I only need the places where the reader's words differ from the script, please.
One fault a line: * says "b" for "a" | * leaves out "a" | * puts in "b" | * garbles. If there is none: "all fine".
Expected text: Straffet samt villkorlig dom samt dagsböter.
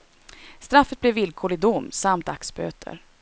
* says "blev" for "samt"